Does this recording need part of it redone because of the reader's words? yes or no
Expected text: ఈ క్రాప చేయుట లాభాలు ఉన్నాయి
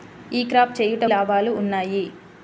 no